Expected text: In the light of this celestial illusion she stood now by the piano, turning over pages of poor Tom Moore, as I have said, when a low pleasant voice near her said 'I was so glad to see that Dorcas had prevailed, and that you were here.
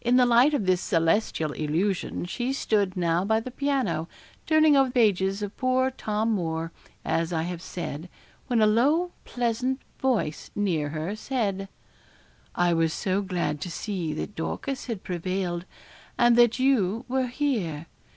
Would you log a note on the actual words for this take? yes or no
no